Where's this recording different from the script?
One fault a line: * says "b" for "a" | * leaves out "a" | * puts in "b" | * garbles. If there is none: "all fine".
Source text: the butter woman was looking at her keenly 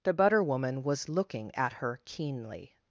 all fine